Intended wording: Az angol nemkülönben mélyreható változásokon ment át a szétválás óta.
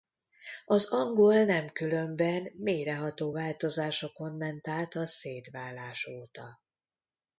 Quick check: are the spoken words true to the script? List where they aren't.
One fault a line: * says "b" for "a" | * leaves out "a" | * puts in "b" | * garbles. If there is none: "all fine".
all fine